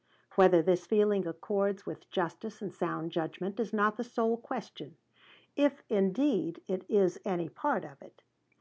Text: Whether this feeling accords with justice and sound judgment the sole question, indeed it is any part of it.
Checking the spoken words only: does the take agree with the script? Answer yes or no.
no